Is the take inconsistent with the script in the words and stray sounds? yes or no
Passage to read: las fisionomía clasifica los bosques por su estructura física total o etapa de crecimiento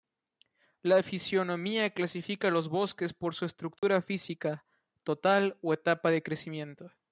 yes